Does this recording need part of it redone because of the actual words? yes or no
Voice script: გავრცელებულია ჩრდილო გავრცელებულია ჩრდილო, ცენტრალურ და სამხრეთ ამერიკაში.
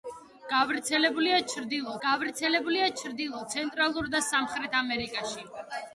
no